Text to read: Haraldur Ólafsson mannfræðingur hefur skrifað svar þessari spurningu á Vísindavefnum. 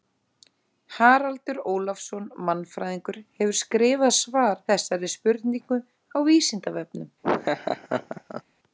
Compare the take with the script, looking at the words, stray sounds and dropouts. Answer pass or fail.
fail